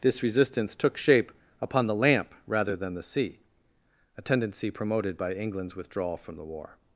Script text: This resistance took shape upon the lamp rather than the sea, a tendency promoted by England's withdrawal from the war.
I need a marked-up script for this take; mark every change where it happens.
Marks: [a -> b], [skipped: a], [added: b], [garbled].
This resistance took shape upon the lamp rather than the sea, a tendency promoted by England's withdrawal from the war.